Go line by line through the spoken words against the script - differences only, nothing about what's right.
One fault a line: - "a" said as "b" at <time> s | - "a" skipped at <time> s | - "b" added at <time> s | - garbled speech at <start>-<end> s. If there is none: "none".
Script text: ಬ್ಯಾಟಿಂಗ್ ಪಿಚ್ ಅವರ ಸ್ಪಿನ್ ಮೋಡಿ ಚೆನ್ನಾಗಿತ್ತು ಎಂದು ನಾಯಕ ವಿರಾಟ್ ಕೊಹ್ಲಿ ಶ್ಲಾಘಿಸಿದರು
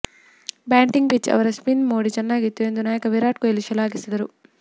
none